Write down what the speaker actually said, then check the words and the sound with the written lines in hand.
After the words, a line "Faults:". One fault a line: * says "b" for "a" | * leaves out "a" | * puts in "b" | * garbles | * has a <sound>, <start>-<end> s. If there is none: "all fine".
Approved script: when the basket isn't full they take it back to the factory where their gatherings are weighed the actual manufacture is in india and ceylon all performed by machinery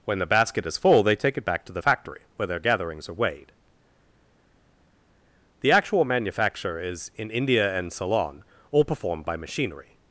when the basket is full they take it back to the factory where their gatherings are weighed the actual manufacture is in india and ceylon all performed by machinery
Faults:
* says "is" for "isn't"